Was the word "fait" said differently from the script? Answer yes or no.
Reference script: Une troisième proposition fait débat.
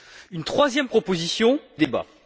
yes